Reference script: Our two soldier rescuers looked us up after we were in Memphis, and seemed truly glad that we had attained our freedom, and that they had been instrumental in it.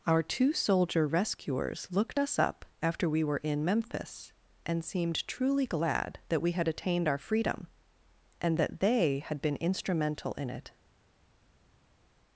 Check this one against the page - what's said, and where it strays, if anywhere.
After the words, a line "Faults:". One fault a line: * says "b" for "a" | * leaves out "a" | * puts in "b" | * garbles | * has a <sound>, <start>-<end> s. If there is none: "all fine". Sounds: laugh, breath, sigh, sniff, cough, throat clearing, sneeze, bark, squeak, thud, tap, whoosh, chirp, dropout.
Our two soldier rescuers looked us up after we were in Memphis, and seemed truly glad that we had attained our freedom, and that they had been instrumental in it.
Faults:
all fine